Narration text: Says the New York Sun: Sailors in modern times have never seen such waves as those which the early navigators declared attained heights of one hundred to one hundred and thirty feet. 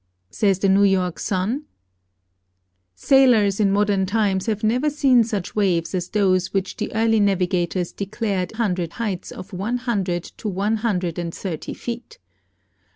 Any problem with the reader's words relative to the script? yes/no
yes